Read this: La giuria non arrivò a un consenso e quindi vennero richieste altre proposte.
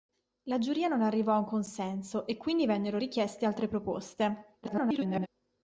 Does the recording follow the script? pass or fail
fail